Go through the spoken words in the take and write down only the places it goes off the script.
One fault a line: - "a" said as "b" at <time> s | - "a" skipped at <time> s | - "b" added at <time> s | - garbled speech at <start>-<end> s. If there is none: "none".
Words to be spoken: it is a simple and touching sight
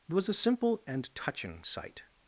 - "is" said as "was" at 0.1 s